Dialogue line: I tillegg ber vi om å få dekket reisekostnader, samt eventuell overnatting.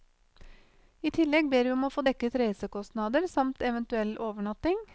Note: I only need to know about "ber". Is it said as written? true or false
true